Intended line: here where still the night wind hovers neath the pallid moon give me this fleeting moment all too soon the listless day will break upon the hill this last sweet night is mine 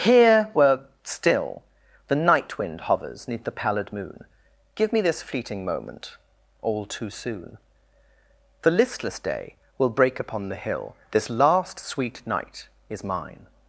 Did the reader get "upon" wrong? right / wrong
right